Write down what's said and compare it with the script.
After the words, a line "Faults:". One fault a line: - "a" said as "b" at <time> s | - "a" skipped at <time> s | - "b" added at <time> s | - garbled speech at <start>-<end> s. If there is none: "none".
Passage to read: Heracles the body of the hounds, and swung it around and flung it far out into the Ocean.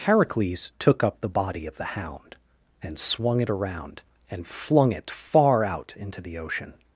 Heracles took up the body of the hound, and swung it around and flung it far out into the Ocean.
Faults:
- "took up" added at 0.8 s
- "hounds" said as "hound" at 1.9 s